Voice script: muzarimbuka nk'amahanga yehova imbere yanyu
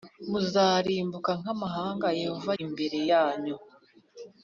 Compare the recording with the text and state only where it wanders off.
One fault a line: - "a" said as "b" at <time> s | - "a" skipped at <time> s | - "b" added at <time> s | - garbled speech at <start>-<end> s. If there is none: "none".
none